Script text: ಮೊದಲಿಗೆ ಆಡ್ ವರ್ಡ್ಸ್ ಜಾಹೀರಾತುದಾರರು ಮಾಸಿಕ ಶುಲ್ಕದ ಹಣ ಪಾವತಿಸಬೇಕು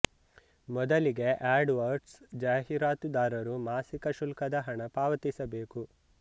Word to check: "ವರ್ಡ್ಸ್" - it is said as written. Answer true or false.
true